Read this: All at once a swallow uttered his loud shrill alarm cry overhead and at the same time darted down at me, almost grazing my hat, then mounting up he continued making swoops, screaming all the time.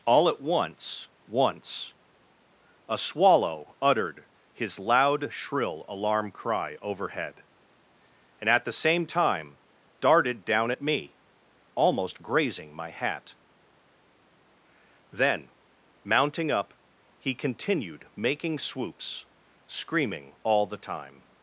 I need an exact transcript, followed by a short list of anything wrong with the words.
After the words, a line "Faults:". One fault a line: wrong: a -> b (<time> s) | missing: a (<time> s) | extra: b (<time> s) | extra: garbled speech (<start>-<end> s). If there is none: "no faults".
All at once once a swallow uttered his loud shrill alarm cry overhead and at the same time darted down at me, almost grazing my hat, then mounting up he continued making swoops, screaming all the time.
Faults:
extra: once (1.3 s)